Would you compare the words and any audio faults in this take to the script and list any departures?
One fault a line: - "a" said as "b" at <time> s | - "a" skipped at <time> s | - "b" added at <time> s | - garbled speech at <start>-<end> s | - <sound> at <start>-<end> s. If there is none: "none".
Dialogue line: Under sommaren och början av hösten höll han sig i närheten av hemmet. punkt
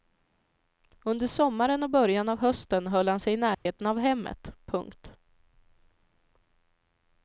- dropout at 3.5-3.7 s